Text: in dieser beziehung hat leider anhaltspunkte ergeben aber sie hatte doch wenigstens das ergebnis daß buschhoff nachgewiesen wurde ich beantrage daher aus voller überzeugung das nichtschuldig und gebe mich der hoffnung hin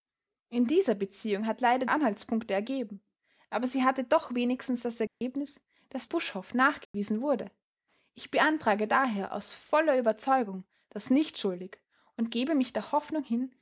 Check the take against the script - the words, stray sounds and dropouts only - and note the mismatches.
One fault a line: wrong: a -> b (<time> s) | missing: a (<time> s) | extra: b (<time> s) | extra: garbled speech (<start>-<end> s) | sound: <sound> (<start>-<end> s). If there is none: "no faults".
sound: dropout (5.1-5.2 s)
sound: dropout (6.8-6.9 s)